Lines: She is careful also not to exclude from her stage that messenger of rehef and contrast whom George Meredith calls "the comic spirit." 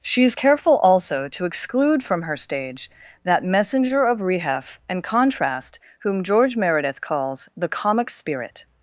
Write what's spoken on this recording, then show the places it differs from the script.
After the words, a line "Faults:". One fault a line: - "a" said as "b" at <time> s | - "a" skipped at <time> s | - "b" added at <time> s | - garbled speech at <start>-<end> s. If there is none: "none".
She is careful also to exclude from her stage that messenger of rehef and contrast whom George Meredith calls "the comic spirit."
Faults:
- "not" skipped at 1.3 s